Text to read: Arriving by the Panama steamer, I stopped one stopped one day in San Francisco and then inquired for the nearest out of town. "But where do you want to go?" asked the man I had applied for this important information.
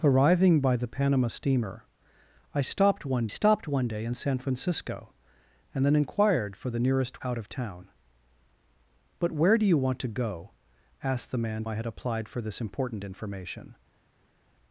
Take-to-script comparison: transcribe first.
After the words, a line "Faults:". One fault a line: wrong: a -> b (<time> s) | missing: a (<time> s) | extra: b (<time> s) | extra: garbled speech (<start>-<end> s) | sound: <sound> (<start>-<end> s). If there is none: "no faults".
Arriving by the Panama steamer, I stopped one stopped one day in San Francisco and then inquired for the nearest out of town. "But where do you want to go?" asked the man I had applied for this important information.
Faults:
no faults